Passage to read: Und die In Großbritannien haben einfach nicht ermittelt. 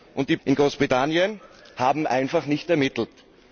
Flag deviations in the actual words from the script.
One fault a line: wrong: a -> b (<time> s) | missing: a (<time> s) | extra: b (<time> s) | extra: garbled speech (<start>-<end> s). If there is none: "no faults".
no faults